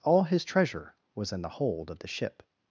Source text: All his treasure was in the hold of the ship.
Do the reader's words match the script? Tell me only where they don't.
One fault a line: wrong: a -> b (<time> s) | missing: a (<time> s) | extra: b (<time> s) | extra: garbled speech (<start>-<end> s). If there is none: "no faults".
no faults